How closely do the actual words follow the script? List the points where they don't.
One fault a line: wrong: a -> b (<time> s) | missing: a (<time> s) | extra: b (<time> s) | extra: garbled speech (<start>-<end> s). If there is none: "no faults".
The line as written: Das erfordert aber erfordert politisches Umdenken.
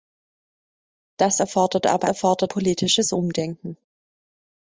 no faults